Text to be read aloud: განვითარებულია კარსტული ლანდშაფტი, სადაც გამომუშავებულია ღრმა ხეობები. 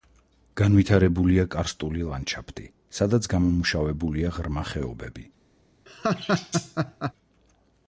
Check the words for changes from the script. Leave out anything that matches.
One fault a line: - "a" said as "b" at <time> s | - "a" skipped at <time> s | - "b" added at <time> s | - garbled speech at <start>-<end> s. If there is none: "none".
none